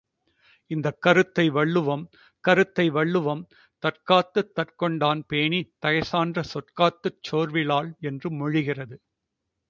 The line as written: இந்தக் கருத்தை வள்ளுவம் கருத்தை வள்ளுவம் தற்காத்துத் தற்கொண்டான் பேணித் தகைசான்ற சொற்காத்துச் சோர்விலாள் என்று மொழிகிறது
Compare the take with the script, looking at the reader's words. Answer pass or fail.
pass